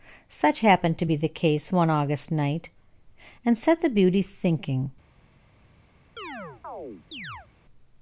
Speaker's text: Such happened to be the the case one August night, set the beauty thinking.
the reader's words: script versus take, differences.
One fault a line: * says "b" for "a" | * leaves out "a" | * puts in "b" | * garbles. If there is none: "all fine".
* leaves out "the"
* puts in "and"